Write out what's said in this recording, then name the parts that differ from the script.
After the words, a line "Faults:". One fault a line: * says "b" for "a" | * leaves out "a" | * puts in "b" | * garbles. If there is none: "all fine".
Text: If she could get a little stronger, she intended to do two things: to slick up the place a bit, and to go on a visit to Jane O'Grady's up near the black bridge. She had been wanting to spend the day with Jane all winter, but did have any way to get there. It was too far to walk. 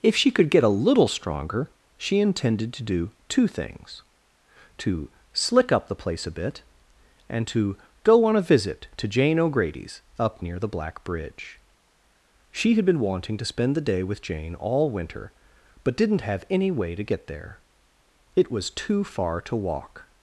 If she could get a little stronger, she intended to do two things: to slick up the place a bit, and to go on a visit to Jane O'Grady's up near the black bridge. She had been wanting to spend the day with Jane all winter, but didn't have any way to get there. It was too far to walk.
Faults:
* says "didn't" for "did"